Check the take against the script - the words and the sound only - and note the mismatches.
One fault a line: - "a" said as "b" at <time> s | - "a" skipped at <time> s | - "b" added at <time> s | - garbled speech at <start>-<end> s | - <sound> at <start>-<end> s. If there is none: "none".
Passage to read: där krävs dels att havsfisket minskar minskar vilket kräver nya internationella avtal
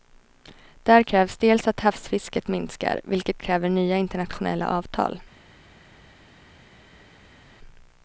- "minskar" skipped at 3.0 s